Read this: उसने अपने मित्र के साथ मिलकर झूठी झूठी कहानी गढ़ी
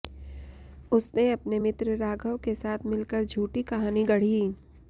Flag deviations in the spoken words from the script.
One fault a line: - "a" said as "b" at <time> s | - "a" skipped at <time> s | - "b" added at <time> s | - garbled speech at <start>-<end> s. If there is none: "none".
- "राघव" added at 2.0 s
- "झूठी" skipped at 3.6 s